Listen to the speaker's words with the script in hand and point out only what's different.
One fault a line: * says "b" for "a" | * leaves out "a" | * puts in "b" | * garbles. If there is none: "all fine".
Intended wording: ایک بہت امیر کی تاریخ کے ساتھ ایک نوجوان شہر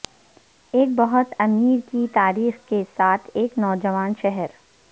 all fine